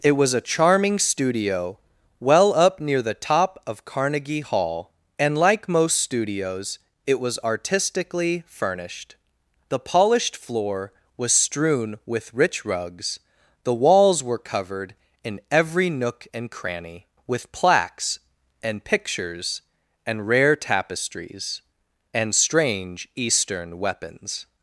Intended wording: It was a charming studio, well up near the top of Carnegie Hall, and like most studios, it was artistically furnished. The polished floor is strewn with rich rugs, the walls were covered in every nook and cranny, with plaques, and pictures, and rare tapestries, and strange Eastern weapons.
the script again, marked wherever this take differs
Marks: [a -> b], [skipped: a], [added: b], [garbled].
It was a charming studio, well up near the top of Carnegie Hall, and like most studios, it was artistically furnished. The polished floor [is -> was] strewn with rich rugs, the walls were covered in every nook and cranny, with plaques, and pictures, and rare tapestries, and strange Eastern weapons.